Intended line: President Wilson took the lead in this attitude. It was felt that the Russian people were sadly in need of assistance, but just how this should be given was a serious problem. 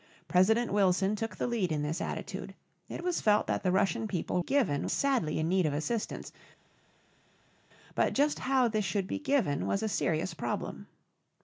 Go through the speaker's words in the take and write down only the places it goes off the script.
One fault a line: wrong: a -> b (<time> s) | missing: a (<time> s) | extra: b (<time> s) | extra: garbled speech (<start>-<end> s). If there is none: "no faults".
wrong: were -> given (4.4 s)